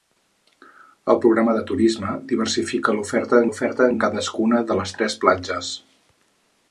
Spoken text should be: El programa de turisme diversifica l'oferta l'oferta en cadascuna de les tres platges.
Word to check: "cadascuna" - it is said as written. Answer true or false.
true